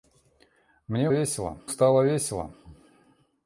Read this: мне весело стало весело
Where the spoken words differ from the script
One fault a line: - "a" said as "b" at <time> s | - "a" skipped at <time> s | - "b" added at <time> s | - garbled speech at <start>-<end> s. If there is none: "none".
none